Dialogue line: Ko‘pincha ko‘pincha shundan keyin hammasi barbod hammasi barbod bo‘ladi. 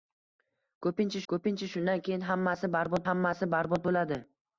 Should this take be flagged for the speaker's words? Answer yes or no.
no